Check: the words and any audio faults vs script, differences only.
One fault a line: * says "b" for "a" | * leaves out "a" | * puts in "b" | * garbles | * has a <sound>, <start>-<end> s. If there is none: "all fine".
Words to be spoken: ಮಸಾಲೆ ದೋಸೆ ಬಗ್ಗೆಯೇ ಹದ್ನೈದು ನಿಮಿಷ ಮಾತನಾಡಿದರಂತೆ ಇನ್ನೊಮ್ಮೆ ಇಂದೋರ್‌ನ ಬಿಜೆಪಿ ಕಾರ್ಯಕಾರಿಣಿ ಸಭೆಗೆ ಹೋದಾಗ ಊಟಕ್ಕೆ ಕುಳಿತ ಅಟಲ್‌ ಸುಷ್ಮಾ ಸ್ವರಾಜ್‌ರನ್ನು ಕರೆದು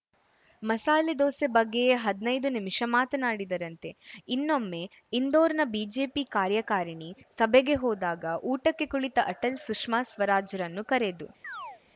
* has a chirp, 11.4-11.8 s